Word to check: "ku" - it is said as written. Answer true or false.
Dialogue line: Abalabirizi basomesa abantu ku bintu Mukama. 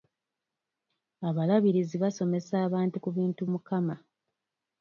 true